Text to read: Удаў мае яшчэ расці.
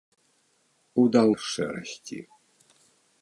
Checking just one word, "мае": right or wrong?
wrong